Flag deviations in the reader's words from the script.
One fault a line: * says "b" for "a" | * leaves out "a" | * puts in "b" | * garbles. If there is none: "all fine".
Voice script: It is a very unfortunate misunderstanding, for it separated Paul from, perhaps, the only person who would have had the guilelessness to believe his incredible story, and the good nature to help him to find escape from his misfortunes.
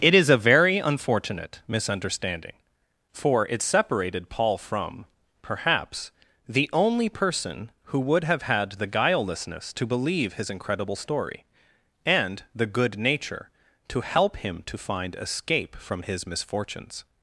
all fine